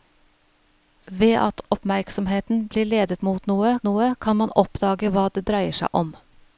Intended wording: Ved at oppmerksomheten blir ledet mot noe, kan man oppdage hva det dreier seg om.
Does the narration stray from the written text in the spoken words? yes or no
yes